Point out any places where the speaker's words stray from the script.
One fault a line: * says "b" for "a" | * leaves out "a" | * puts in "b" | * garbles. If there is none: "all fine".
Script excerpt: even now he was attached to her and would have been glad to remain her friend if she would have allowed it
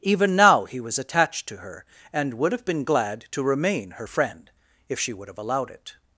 all fine